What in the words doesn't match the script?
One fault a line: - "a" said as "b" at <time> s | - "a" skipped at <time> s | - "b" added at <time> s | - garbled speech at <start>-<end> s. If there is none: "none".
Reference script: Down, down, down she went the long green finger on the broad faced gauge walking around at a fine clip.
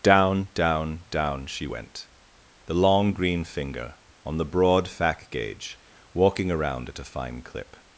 - "faced" said as "fac" at 4.9 s